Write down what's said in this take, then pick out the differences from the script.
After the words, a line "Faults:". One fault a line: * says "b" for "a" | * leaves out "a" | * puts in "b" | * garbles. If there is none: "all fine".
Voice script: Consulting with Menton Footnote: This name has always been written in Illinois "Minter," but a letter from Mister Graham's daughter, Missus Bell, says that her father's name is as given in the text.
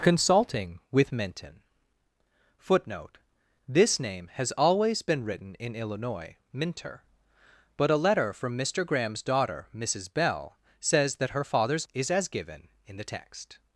Consulting with Menton Footnote: This name has always been written in Illinois "Minter," but a letter from Mister Graham's daughter, Missus Bell, says that her father's is as given in the text.
Faults:
* leaves out "name"